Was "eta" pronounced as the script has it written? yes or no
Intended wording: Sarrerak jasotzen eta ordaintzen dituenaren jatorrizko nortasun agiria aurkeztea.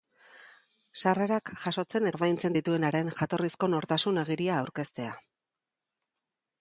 no